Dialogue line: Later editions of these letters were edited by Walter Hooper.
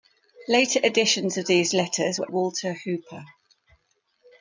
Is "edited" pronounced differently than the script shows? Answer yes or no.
yes